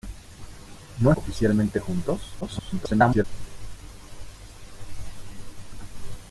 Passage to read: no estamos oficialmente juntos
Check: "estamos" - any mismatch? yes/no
yes